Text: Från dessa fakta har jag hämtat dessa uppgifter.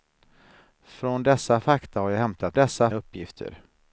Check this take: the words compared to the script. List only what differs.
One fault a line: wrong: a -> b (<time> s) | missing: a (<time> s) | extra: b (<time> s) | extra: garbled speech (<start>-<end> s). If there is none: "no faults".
no faults